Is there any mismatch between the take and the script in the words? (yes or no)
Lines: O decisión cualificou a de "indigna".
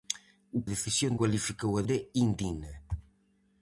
no